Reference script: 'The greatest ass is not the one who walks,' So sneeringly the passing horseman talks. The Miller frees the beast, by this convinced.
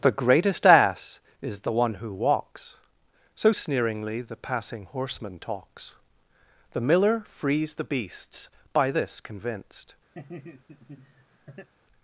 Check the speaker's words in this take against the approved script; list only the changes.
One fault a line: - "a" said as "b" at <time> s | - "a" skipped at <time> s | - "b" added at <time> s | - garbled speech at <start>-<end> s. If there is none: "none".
- "not" skipped at 1.6 s
- "beast" said as "beasts" at 7.8 s